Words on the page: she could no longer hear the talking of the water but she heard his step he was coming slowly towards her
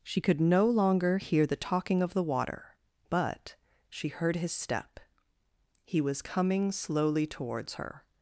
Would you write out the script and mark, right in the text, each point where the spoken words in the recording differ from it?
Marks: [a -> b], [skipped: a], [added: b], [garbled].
she could no longer hear the talking of the water but she heard his step he was coming slowly towards her